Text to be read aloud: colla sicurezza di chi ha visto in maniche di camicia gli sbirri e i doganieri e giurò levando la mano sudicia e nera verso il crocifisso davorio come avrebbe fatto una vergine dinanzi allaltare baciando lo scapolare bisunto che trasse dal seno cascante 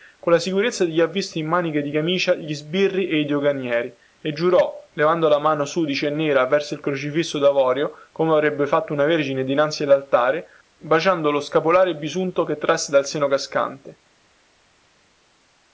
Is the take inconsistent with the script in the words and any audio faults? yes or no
no